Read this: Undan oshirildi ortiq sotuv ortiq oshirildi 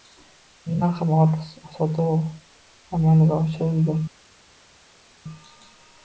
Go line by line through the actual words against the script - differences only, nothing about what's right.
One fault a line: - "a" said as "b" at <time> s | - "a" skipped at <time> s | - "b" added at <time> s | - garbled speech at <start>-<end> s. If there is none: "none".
- "oshirildi" said as "ham" at 1.0 s
- "ortiq" said as "amalga" at 3.0 s